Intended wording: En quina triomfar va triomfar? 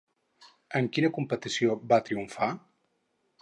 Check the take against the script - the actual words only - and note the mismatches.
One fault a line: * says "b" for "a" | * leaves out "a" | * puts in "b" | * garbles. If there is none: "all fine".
* says "competició" for "triomfar"